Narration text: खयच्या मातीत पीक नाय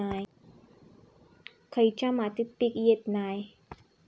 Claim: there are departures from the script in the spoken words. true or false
true